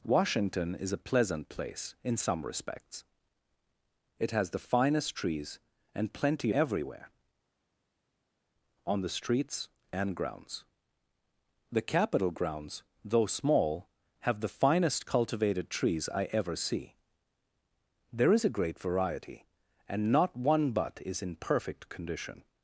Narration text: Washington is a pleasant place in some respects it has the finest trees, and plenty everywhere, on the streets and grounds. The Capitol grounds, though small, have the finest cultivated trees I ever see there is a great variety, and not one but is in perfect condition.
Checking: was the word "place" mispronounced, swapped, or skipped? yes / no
no